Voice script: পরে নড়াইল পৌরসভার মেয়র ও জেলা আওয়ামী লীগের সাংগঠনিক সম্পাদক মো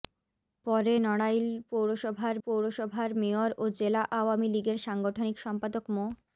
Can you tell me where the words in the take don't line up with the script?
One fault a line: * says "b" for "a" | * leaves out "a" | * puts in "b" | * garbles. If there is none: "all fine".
* puts in "পৌরসভার"